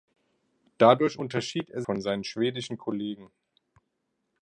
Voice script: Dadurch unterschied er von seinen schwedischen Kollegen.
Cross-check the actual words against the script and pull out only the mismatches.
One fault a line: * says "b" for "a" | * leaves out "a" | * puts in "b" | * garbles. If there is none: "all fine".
all fine